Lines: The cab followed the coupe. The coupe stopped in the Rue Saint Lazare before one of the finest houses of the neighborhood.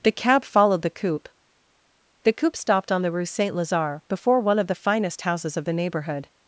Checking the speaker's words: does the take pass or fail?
fail